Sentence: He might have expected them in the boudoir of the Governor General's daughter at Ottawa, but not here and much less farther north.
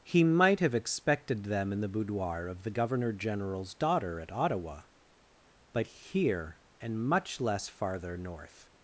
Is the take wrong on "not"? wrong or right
wrong